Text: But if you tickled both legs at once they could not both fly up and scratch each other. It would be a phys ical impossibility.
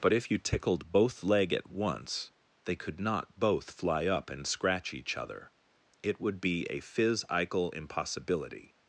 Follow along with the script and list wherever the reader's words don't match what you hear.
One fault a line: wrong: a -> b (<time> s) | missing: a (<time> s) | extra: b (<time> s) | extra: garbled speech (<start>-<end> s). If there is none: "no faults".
wrong: legs -> leg (1.2 s)